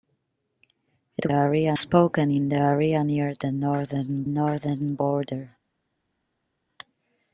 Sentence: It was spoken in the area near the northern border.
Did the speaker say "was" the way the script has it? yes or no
no